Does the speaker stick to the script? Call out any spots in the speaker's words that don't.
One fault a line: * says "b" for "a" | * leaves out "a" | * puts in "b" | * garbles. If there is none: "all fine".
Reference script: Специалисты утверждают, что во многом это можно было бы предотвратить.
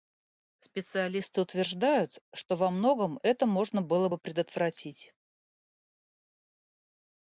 all fine